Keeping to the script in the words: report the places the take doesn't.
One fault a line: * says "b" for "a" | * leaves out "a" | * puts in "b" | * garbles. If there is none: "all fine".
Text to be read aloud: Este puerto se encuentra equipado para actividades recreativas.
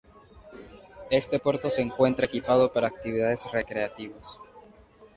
all fine